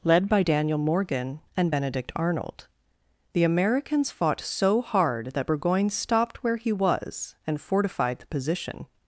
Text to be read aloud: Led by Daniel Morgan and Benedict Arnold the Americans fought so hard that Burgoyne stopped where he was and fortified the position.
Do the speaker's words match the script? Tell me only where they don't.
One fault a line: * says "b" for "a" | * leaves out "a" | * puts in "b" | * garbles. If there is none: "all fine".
all fine